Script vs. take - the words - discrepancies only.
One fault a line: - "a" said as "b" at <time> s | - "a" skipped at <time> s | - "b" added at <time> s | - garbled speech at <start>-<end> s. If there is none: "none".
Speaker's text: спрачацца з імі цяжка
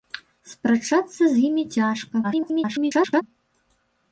- garbled speech at 2.2-3.2 s